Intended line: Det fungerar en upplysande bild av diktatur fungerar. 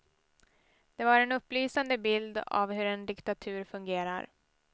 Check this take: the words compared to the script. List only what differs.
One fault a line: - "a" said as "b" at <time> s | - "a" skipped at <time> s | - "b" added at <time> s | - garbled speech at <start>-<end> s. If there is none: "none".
- "fungerar" said as "var" at 1.1 s
- "hur en" added at 2.7 s